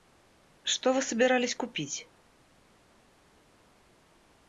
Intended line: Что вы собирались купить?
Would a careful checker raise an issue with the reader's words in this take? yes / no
no